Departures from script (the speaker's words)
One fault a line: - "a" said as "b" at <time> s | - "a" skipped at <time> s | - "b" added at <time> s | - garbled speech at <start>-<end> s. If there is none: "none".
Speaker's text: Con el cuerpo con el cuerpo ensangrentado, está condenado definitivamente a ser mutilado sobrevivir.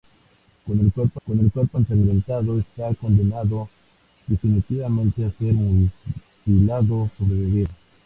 none